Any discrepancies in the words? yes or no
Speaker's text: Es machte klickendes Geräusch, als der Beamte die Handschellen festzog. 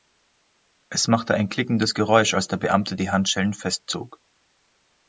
yes